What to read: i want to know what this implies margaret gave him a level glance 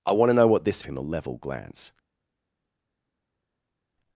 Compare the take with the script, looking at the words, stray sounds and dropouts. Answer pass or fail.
fail